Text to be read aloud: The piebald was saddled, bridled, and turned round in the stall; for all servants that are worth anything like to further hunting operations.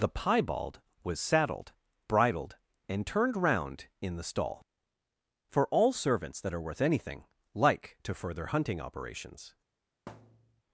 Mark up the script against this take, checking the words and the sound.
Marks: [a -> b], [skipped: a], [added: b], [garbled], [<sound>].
The piebald was saddled, bridled, and turned round in the stall; for all servants that are worth anything like to further hunting operations. [thud]